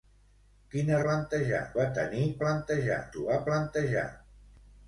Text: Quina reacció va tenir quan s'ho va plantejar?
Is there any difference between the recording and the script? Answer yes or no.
yes